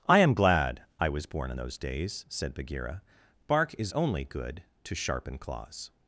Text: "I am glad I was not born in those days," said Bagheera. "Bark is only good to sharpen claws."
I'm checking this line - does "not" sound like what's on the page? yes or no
no